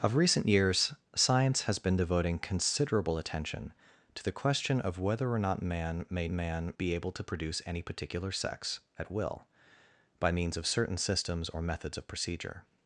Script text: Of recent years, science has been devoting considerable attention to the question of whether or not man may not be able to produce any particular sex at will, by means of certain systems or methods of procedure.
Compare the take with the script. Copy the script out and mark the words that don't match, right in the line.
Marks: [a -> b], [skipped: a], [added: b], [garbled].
Of recent years, science has been devoting considerable attention to the question of whether or not man may [not -> man] be able to produce any particular sex at will, by means of certain systems or methods of procedure.